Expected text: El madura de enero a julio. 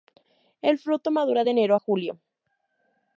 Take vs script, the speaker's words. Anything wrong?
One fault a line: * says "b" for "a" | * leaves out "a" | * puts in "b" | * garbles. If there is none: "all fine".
* puts in "fruto"